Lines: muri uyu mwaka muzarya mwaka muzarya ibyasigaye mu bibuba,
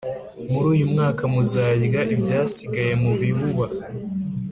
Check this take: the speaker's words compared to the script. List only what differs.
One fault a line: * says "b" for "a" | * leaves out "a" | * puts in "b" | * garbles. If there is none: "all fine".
* leaves out "mwaka muzarya"